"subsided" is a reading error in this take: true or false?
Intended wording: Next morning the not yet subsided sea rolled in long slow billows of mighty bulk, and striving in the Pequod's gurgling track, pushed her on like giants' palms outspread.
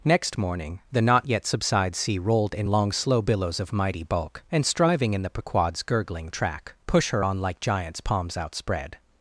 true